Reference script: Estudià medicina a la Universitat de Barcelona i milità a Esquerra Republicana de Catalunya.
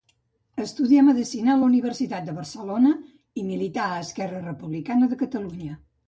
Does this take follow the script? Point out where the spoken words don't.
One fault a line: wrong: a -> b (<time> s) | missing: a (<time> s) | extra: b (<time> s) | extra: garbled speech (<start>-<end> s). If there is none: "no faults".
no faults